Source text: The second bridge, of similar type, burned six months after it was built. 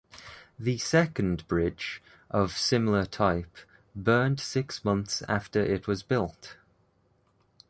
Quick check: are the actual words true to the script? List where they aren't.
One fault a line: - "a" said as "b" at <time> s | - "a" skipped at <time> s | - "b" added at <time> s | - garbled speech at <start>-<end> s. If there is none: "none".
none